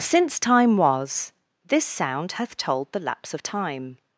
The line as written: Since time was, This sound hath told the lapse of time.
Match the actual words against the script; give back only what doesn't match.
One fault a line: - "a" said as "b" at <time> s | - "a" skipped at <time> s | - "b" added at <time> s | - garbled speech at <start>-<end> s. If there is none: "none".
none